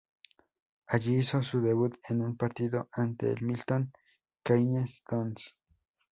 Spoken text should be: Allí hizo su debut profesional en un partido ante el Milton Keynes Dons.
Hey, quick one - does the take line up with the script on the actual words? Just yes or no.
no